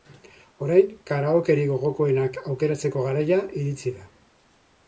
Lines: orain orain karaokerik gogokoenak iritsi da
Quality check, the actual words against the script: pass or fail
fail